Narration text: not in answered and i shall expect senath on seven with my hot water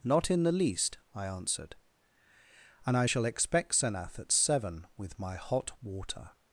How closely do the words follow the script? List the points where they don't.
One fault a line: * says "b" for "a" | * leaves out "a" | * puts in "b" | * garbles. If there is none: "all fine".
* puts in "the least i"
* says "at" for "on"